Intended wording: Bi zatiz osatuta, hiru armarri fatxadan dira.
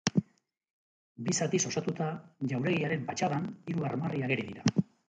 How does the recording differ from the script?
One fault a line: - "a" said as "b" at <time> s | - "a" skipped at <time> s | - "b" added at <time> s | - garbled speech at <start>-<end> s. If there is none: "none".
- "jauregiaren fatxadan" added at 2.5 s
- "fatxadan" said as "ageri" at 4.3 s